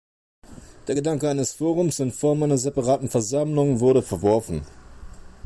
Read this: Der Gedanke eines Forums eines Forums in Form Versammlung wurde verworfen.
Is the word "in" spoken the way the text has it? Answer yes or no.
no